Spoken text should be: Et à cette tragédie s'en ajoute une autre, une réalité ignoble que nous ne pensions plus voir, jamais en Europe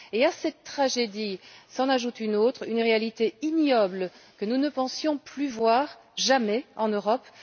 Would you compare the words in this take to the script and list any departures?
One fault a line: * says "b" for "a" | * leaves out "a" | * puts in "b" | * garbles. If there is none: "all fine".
all fine